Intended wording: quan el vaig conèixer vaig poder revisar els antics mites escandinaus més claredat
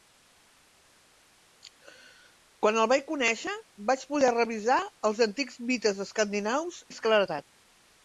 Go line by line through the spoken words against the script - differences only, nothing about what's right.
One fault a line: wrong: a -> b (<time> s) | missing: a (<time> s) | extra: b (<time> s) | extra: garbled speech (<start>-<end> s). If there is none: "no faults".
no faults